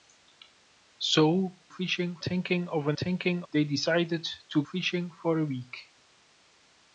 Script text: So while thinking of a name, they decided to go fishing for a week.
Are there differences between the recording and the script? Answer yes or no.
yes